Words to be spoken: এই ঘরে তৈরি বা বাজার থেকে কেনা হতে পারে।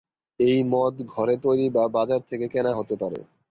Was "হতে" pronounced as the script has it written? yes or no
yes